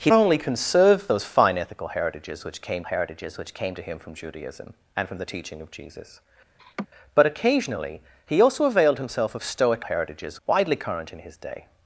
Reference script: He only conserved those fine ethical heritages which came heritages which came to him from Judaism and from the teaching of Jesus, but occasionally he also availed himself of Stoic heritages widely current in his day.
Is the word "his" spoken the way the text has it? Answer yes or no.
yes